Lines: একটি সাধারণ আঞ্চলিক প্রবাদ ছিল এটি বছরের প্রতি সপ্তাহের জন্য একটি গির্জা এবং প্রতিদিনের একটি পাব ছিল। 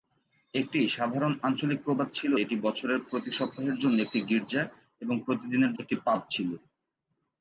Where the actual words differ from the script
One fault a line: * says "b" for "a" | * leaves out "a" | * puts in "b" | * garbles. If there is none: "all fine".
all fine